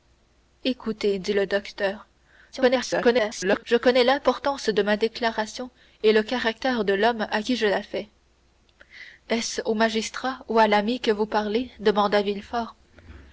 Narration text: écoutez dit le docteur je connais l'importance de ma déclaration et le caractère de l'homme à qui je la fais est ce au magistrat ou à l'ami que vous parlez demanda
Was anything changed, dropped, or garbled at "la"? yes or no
no